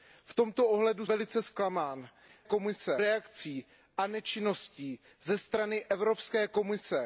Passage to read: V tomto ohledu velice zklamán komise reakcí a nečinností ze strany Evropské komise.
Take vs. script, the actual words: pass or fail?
pass